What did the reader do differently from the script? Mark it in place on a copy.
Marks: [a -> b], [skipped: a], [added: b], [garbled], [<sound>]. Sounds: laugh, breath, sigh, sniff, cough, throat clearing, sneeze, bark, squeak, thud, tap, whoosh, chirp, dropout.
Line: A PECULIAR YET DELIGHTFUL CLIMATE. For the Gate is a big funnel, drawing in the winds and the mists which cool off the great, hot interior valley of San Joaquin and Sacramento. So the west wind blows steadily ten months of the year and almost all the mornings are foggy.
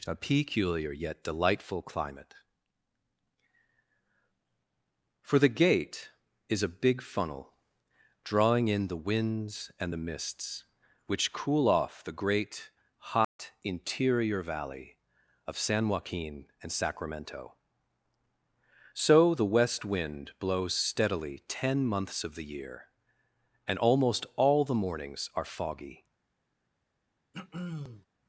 A PECULIAR YET DELIGHTFUL CLIMATE. For the Gate is a big funnel, drawing in the winds and the mists which cool off the great, hot [dropout] interior valley of San Joaquin and Sacramento. So the west wind blows steadily ten months of the year and almost all the mornings are foggy. [throat clearing]